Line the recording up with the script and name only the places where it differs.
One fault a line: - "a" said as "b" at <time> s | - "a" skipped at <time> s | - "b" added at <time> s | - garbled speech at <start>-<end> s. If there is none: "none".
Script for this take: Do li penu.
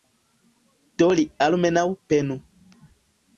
- "almenaŭ" added at 1.5 s